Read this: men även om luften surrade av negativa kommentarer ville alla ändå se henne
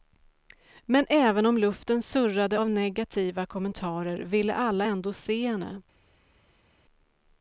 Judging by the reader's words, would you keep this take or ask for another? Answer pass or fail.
pass